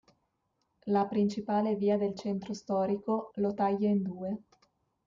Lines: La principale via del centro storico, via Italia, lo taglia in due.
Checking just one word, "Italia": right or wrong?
wrong